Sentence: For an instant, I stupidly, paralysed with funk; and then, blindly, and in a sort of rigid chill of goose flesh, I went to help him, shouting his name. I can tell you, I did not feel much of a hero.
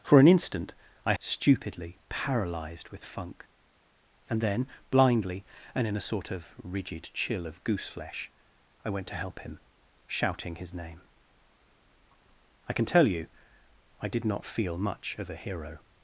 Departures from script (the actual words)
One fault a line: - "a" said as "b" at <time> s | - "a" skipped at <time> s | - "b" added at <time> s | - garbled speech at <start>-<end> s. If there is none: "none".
none